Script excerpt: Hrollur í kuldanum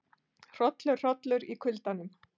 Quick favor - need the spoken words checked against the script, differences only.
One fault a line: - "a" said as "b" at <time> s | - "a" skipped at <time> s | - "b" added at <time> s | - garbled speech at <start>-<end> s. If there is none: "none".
- "hollur" added at 1.1 s